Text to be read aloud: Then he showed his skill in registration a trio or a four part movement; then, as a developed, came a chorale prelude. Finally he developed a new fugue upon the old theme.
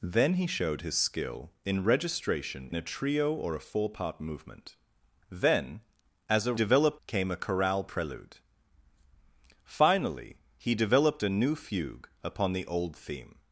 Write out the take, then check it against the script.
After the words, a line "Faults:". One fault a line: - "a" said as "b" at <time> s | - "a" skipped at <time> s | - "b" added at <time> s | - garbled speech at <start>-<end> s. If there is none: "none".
Then he showed his skill in registration a trio or a four part movement; then, as a developed, came a chorale prelude. Finally he developed a new fugue upon the old theme.
Faults:
none